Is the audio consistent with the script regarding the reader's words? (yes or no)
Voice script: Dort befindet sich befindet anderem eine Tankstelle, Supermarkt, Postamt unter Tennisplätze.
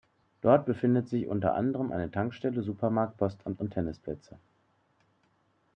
no